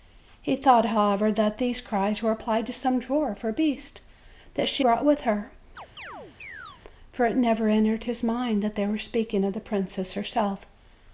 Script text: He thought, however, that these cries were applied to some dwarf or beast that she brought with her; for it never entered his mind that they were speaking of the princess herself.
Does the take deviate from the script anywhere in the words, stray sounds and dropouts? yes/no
yes